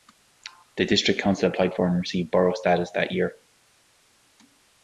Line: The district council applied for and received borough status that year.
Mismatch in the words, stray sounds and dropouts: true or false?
false